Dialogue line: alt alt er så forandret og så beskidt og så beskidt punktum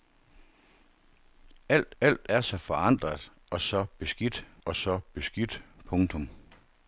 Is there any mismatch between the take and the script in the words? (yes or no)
no